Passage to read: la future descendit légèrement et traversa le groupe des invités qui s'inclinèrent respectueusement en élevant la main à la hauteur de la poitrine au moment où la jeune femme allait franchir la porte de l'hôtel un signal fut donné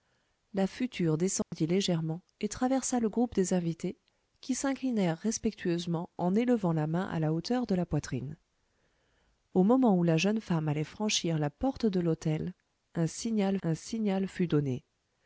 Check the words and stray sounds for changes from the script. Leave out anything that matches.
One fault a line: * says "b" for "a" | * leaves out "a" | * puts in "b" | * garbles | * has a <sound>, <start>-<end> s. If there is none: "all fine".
* has a dropout, 1.4-1.5 s
* puts in "un signal"